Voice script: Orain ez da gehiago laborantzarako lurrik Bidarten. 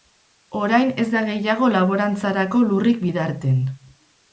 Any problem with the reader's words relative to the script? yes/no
no